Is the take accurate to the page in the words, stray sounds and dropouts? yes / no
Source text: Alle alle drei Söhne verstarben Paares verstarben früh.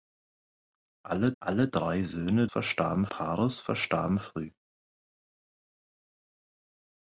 yes